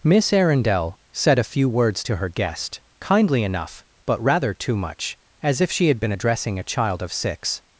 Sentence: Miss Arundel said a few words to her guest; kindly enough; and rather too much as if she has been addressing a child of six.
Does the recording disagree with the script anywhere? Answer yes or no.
yes